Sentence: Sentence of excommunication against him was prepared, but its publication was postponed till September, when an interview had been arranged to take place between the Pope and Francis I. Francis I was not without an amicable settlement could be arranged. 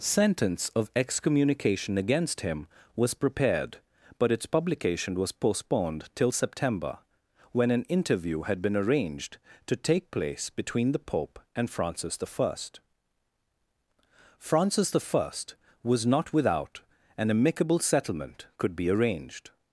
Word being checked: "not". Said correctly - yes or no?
yes